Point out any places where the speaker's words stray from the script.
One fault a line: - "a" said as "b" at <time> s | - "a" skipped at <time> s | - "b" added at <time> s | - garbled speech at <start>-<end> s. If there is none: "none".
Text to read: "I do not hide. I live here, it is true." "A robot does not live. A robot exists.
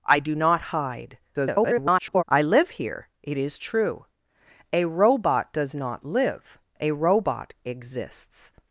- garbled speech at 1.3-2.2 s